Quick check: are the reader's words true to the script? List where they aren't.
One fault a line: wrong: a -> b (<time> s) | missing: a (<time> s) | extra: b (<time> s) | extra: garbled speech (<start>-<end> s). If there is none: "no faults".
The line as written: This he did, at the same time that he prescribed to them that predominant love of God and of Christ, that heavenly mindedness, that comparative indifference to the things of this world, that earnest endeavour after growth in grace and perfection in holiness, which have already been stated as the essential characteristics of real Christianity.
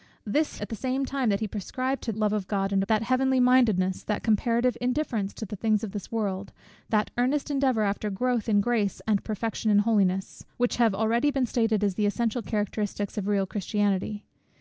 missing: he did (0.6 s)
missing: them that predominant (2.1 s)
missing: of Christ (2.8 s)